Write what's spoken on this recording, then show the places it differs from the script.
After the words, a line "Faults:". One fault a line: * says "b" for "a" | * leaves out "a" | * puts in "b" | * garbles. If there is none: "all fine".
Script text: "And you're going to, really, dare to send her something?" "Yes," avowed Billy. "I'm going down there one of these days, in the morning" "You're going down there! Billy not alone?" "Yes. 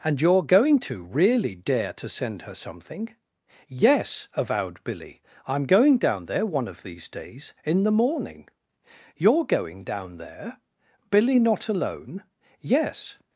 "And you're going to, really, dare to send her something?" "Yes," avowed Billy. "I'm going down there one of these days, in the morning" "You're going down there! Billy not alone?" "Yes.
Faults:
all fine